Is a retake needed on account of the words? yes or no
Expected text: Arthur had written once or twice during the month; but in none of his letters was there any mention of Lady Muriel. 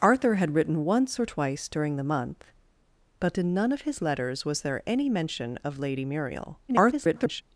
yes